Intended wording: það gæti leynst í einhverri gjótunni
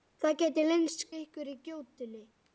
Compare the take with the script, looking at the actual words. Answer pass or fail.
pass